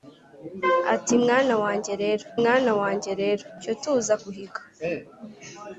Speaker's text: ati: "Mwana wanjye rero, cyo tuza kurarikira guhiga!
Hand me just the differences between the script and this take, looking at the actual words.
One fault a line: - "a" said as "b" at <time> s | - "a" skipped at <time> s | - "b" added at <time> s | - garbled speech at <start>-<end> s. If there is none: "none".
- "mwana wanjye rero" added at 2.4 s
- "kurarikira" skipped at 4.1 s